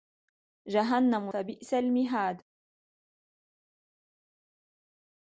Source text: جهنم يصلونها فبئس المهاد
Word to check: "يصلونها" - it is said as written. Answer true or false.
false